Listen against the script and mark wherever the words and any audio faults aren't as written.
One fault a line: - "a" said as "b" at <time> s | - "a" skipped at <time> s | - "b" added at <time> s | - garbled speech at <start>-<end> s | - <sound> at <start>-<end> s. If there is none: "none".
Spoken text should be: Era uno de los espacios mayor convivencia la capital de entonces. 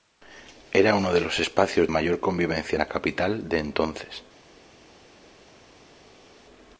none